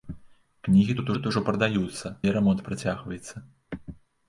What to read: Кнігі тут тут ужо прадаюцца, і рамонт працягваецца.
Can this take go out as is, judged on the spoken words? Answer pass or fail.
pass